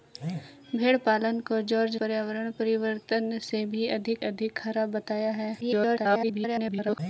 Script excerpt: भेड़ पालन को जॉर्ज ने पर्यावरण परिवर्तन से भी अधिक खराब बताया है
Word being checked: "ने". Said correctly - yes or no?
no